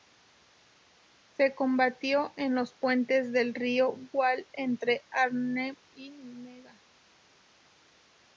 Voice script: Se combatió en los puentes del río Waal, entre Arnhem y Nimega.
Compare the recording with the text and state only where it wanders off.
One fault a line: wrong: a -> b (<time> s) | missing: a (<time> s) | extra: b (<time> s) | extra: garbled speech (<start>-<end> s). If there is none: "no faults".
no faults